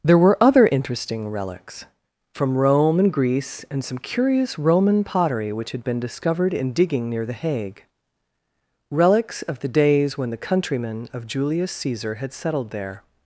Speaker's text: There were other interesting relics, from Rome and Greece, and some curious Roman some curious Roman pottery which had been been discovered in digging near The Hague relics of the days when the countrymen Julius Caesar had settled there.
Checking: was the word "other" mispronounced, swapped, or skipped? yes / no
no